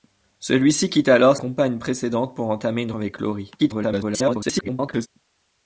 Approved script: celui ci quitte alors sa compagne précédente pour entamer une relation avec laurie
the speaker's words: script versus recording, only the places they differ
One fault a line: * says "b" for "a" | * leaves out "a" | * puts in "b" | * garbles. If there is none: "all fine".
* leaves out "sa"
* leaves out "relation"
* garbles